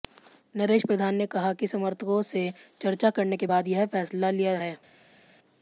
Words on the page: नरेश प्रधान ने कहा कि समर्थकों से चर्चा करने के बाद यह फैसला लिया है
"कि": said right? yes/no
yes